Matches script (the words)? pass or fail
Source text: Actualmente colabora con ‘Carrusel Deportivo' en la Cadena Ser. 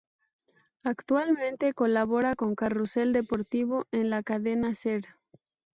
pass